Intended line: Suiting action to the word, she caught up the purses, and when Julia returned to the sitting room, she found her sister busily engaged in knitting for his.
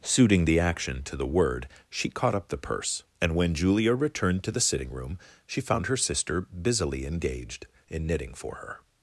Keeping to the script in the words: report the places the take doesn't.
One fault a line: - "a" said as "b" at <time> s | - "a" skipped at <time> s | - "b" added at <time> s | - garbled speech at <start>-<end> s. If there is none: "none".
- "the" added at 0.5 s
- "purses" said as "purse" at 2.6 s
- "his" said as "her" at 8.5 s